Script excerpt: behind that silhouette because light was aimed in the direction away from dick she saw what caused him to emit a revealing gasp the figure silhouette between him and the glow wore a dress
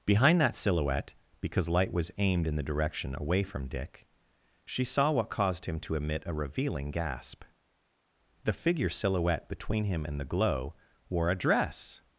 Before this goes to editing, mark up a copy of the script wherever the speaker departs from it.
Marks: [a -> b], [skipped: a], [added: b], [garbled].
behind that silhouette because light was aimed in the direction away from dick she saw what caused him to emit a revealing gasp the figure silhouette between him and the glow wore a dress